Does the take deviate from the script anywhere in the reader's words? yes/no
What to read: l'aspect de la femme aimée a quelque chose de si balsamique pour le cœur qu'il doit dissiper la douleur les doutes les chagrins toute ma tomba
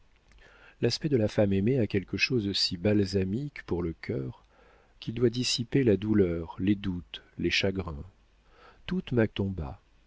no